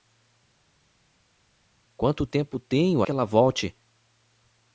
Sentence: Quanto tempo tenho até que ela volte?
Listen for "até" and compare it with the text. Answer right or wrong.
wrong